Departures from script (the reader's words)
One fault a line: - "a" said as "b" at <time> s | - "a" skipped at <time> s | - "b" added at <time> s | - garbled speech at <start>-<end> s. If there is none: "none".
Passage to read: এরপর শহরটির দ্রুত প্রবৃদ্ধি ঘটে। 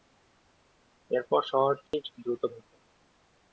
- "প্রবৃদ্ধি" skipped at 2.4 s